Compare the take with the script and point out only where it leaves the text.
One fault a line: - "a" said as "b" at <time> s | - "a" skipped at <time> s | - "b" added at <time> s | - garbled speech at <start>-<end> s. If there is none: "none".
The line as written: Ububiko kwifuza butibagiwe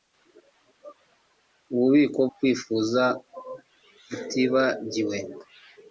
none